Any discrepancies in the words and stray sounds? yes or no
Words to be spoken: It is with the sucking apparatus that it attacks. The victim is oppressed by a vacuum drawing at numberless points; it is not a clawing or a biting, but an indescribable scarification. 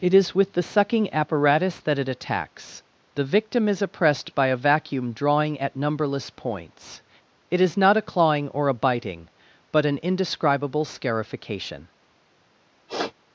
yes